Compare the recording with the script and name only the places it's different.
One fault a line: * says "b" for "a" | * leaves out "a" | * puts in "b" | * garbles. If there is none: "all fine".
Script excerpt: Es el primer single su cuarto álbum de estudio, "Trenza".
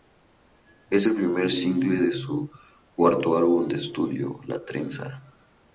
* puts in "de"
* puts in "La"